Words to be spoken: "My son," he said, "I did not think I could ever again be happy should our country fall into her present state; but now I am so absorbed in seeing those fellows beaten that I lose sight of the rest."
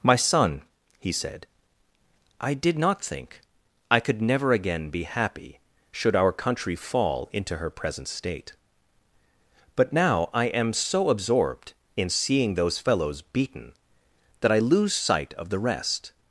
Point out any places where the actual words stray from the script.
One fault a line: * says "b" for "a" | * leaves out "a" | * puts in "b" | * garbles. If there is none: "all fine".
* says "never" for "ever"